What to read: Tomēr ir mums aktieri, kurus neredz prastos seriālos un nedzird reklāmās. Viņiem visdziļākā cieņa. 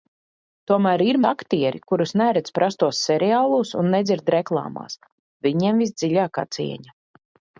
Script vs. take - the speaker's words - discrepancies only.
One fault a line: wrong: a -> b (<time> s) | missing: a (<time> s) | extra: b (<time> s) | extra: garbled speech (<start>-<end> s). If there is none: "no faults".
missing: mums (1.2 s)